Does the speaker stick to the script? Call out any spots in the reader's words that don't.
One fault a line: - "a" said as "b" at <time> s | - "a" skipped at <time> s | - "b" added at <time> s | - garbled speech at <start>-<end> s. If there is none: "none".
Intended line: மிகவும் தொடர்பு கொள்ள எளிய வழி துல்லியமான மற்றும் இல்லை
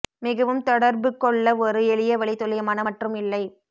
- "ஒரு" added at 1.6 s